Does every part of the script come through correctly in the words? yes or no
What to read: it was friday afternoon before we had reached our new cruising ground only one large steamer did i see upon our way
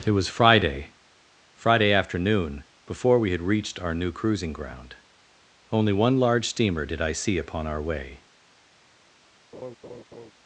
no